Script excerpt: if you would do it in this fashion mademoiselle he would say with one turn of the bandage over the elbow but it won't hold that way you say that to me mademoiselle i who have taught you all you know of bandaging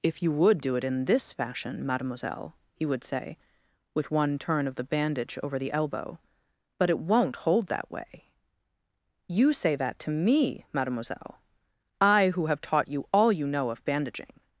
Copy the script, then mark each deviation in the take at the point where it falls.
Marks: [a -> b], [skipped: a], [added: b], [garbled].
if you would do it in this fashion mademoiselle he would say with one turn of the bandage over the elbow but it won't hold that way you say that to me mademoiselle i who have taught you all you know of bandaging